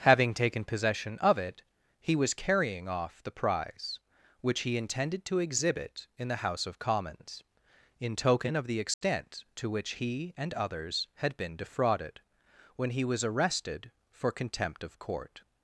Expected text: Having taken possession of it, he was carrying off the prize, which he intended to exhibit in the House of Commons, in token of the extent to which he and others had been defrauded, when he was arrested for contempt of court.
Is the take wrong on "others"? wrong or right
right